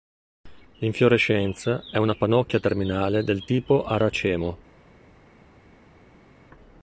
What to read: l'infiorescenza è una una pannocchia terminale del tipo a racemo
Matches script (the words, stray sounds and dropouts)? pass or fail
fail